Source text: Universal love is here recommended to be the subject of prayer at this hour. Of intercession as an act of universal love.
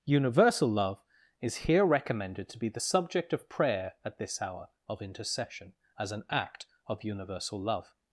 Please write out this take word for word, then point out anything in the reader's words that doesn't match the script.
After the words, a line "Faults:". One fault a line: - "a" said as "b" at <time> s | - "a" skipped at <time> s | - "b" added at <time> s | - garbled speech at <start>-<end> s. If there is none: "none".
Universal love is here recommended to be the subject of prayer at this hour. Of intercession as an act of universal love.
Faults:
none